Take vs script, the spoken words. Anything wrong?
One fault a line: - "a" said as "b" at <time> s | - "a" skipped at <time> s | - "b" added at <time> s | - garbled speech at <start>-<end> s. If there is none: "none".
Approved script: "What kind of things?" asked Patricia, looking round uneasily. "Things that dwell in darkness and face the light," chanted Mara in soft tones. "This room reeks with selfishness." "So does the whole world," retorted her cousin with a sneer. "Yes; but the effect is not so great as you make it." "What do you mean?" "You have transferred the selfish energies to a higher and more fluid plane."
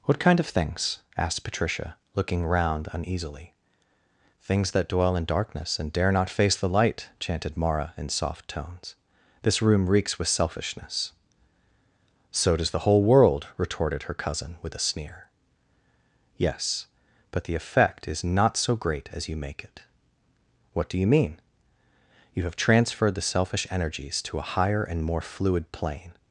- "dare not" added at 5.9 s